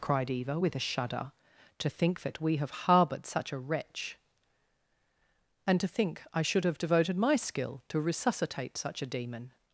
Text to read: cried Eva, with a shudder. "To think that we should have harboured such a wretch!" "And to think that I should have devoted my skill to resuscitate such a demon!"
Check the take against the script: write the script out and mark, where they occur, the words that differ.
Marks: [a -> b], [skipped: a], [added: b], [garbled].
cried Eva, with a shudder. "To think that we [skipped: should] have harboured such a wretch!" "And to think [skipped: that] I should have devoted my skill to resuscitate such a demon!"